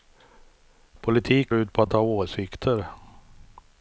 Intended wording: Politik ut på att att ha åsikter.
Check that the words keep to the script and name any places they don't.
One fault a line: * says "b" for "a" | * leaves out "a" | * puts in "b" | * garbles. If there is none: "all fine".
all fine